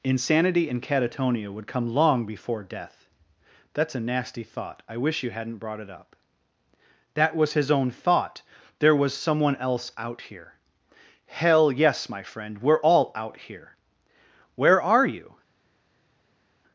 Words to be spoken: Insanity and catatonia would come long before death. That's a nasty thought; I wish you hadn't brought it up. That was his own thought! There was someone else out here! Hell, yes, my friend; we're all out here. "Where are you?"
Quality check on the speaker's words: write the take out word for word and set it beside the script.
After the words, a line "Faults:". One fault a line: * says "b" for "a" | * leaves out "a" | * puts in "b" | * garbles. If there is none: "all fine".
Insanity and catatonia would come long before death. That's a nasty thought; I wish you hadn't brought it up. That was his own thought! There was someone else out here! Hell, yes, my friend; we're all out here. "Where are you?"
Faults:
all fine